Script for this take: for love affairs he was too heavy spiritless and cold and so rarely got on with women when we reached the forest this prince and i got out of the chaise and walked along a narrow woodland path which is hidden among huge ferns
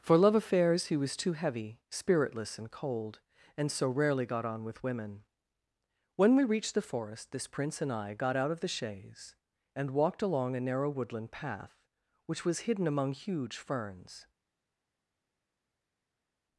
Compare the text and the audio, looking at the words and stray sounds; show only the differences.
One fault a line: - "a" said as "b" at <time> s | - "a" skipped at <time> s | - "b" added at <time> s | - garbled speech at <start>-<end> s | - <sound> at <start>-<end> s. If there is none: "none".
- "is" said as "was" at 12.4 s